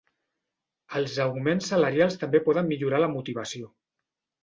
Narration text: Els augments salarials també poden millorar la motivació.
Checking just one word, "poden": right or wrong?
right